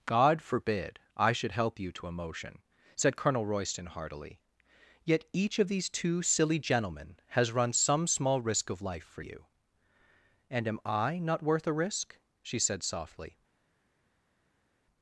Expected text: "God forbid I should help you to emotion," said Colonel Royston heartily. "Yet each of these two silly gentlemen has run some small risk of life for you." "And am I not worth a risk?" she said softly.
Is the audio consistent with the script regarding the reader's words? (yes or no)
yes